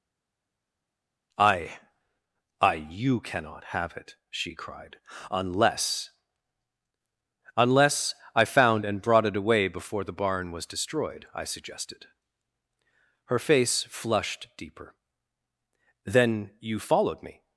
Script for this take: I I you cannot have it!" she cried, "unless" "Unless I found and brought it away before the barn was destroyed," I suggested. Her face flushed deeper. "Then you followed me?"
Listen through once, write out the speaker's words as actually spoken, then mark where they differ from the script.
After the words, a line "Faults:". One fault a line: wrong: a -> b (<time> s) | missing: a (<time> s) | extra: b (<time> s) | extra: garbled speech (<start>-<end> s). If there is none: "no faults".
I I you cannot have it!" she cried, "unless" "Unless I found and brought it away before the barn was destroyed," I suggested. Her face flushed deeper. "Then you followed me?"
Faults:
no faults